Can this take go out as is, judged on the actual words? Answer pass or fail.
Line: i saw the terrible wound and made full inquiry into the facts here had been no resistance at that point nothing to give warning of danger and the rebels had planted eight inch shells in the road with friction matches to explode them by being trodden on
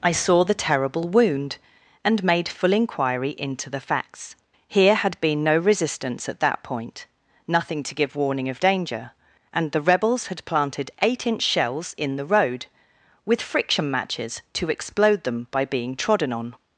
pass